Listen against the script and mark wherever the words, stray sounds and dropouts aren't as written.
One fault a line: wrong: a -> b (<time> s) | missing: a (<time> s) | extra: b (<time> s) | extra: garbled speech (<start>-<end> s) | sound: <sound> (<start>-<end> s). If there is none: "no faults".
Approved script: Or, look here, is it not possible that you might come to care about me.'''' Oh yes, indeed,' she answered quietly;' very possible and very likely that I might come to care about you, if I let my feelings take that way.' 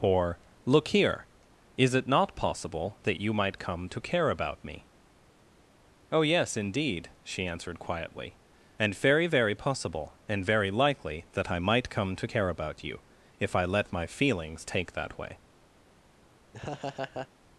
extra: and very (8.8 s)
sound: laugh (16.5-17.3 s)